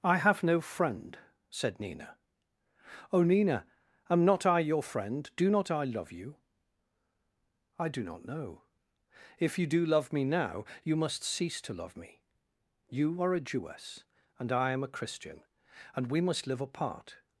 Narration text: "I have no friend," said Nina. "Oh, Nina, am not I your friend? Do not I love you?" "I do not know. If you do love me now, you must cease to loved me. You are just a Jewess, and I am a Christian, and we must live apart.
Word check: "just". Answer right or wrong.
wrong